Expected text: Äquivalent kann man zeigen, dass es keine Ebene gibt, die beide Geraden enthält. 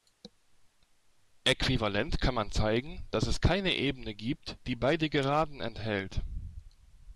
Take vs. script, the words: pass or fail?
pass